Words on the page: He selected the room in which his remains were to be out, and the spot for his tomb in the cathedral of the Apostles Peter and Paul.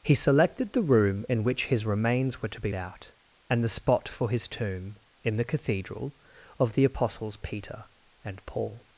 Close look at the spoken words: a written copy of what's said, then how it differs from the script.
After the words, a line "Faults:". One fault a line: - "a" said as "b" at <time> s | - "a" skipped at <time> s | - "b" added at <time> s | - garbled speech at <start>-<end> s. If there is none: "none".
He selected the room in which his remains were to be out, and the spot for his tomb in the cathedral of the Apostles Peter and Paul.
Faults:
none